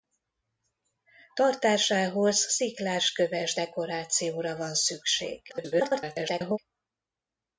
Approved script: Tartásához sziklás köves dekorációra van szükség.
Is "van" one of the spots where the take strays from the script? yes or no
no